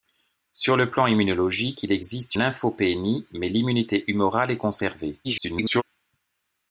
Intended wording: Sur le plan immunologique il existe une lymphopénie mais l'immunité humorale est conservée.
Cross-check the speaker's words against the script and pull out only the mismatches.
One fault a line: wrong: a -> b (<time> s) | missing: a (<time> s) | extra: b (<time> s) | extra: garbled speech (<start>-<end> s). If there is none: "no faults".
missing: une (2.4 s)
extra: garbled speech (5.2-5.8 s)